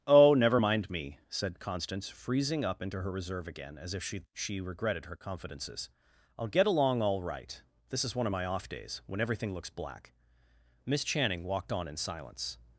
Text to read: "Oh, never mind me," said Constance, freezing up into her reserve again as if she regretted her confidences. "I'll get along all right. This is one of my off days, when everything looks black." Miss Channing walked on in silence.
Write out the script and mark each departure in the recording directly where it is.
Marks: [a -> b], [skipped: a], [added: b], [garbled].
"Oh, never mind me," said Constance, freezing up into her reserve again as if she [added: she] regretted her confidences. "I'll get along all right. This is one of my off days, when everything looks black." Miss Channing walked on in silence.